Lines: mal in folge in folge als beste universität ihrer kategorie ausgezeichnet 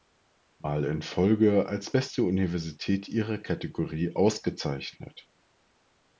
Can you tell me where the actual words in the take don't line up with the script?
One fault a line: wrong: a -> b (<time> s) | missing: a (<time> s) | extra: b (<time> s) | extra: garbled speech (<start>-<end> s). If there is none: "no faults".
missing: in folge (1.7 s)